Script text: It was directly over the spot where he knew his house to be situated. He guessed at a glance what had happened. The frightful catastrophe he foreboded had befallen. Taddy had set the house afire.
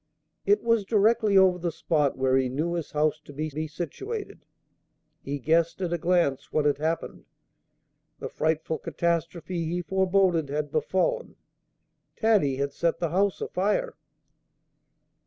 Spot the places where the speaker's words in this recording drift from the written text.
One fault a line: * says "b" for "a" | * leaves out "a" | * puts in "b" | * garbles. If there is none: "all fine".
* puts in "be"